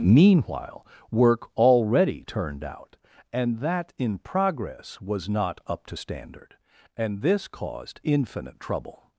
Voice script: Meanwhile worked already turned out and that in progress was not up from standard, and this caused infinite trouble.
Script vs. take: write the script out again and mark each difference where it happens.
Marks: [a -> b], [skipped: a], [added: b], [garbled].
Meanwhile [worked -> work] already turned out and that in progress was not up [from -> to] standard, and this caused infinite trouble.